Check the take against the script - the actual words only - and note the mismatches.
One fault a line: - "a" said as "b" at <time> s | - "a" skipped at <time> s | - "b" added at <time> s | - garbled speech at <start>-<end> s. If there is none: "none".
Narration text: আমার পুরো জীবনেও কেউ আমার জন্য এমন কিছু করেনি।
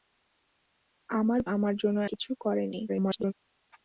- "পুরো জীবনেও কেউ" skipped at 1.4 s
- "এমন" skipped at 2.0 s
- garbled speech at 2.9-3.3 s